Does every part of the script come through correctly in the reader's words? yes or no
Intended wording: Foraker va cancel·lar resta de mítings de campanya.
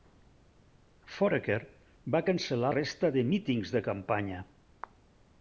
yes